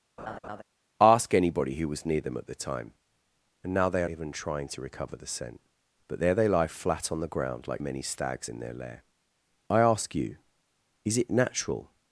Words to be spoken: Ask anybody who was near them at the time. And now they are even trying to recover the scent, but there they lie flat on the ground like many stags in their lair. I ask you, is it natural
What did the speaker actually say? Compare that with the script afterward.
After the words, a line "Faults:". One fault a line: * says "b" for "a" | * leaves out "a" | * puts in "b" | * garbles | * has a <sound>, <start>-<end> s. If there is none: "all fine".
Ask anybody who was near them at the time. And now they are even trying to recover the scent, but there they lie flat on the ground like many stags in their lair. I ask you, is it natural
Faults:
* has a laugh, 0.2-0.6 s